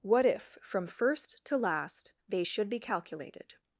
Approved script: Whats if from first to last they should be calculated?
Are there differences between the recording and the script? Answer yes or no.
yes